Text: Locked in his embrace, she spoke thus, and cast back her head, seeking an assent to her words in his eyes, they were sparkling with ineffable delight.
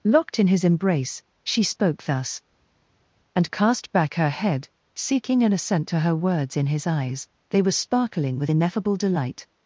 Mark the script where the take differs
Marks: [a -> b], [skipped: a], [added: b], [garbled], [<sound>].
Locked in his embrace, she spoke thus, and cast back her head, seeking an assent to her words in his eyes, they were sparkling with ineffable delight.